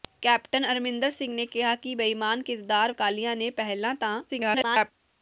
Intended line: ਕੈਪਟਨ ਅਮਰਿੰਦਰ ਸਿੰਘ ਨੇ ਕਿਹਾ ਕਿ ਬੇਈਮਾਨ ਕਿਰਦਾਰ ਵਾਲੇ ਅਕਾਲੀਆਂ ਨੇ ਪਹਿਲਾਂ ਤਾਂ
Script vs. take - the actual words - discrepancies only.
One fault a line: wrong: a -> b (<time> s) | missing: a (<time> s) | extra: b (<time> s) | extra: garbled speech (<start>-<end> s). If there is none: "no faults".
missing: ਵਾਲੇ (2.9 s)
extra: garbled speech (4.3-4.9 s)